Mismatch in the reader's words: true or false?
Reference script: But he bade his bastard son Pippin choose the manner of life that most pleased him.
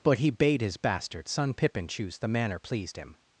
true